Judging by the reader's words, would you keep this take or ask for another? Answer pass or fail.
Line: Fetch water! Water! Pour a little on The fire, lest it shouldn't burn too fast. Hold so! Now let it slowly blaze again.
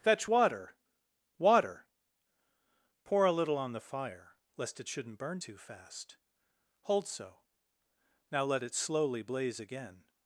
pass